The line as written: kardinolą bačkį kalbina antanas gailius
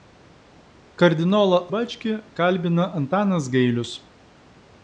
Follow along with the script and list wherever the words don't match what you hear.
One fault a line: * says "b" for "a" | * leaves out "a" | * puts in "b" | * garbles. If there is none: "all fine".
all fine